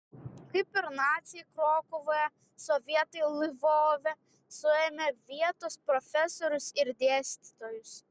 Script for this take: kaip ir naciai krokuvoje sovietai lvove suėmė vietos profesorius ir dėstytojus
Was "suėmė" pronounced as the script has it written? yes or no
yes